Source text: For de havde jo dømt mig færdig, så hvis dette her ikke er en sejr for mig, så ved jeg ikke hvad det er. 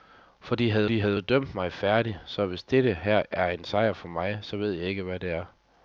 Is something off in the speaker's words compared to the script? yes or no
yes